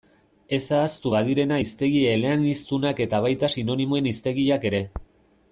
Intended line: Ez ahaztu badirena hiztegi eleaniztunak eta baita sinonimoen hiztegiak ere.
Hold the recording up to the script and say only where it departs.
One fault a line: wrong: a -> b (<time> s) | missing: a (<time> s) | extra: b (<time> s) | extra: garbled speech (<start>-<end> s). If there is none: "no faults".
no faults